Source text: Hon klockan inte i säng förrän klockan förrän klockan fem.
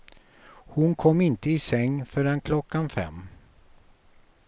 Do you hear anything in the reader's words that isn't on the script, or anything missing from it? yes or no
yes